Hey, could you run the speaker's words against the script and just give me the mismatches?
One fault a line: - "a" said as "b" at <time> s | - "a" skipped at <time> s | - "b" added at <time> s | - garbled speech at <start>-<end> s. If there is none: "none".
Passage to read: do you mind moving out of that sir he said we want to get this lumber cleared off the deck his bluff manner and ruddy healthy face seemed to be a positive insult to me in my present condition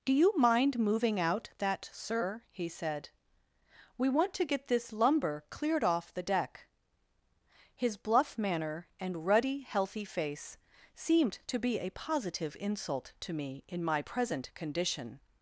- "of" skipped at 1.5 s